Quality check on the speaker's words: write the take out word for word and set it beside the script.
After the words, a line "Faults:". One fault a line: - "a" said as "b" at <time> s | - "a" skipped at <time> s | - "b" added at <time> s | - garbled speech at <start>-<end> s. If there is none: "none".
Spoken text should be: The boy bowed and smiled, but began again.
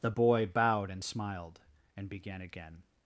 The boy bowed and smiled, and began again.
Faults:
- "but" said as "and" at 2.0 s